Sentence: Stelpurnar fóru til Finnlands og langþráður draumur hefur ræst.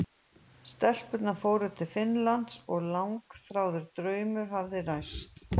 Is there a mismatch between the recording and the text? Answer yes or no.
yes